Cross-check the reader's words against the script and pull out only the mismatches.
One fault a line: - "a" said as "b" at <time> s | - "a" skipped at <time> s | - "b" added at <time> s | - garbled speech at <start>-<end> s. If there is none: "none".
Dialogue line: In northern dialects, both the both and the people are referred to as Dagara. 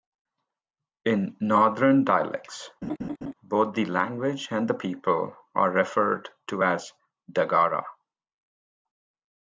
- "both" said as "language" at 3.8 s